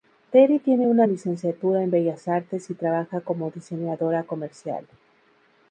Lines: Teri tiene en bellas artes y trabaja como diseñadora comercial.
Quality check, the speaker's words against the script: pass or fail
fail